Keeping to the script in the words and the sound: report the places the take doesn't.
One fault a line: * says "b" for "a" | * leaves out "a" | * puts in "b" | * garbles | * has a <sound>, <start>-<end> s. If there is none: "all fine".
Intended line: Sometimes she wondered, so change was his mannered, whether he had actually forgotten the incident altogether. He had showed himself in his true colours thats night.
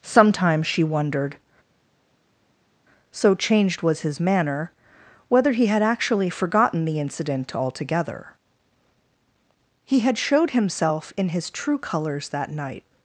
* says "changed" for "change"
* says "manner" for "mannered"
* says "that" for "thats"